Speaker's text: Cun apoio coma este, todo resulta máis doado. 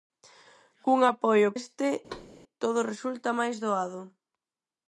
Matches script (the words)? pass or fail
fail